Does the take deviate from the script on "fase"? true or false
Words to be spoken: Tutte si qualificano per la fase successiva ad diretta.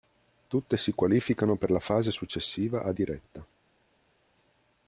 false